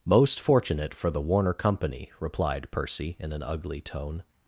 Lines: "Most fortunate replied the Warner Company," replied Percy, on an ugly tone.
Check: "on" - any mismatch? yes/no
yes